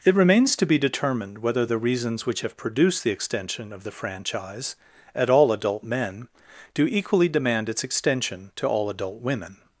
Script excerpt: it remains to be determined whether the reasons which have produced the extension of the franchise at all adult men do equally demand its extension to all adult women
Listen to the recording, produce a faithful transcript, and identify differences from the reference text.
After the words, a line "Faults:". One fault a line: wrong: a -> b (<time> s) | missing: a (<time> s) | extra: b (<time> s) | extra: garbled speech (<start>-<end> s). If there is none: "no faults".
it remains to be determined whether the reasons which have produced the extension of the franchise at all adult men do equally demand its extension to all adult women
Faults:
no faults